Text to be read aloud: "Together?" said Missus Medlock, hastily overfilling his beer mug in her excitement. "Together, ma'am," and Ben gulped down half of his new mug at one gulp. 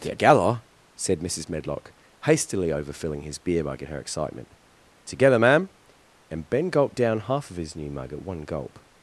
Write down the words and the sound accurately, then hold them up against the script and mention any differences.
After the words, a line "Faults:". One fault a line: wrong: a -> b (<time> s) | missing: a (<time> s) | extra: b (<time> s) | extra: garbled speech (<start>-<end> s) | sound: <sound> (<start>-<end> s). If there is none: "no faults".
"Together?" said Missus Medlock, hastily overfilling his beer mug in her excitement. "Together, ma'am," and Ben gulped down half of his new mug at one gulp.
Faults:
no faults